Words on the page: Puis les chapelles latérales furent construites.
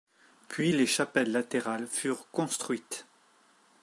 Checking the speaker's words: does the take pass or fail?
pass